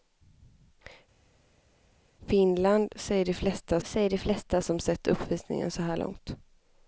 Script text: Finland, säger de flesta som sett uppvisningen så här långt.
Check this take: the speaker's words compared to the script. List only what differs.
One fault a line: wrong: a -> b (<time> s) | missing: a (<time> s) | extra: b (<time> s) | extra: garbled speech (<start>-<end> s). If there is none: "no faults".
extra: säger de flesta (3.8 s)